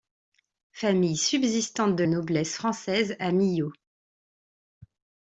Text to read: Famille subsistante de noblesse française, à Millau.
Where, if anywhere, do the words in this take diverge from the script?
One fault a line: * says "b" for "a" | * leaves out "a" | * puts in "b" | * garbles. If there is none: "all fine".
all fine